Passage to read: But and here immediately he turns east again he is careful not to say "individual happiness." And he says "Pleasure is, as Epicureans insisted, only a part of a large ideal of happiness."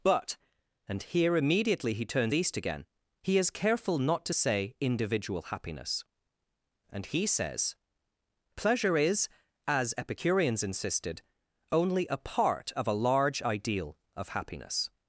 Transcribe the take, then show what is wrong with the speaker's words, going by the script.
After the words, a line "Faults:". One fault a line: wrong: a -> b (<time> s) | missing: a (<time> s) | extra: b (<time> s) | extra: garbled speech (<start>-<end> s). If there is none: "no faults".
But and here immediately he turns east again he is careful not to say "individual happiness." And he says "Pleasure is, as Epicureans insisted, only a part of a large ideal of happiness."
Faults:
no faults